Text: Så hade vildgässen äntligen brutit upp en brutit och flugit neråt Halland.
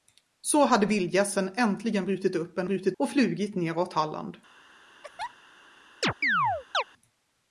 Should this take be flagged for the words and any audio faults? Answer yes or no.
yes